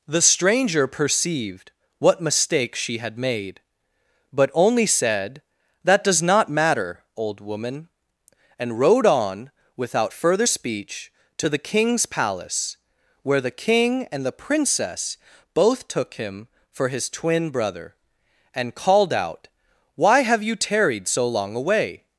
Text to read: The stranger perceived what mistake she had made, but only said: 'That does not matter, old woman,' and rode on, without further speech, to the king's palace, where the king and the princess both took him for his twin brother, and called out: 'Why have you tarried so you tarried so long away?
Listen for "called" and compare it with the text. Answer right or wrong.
right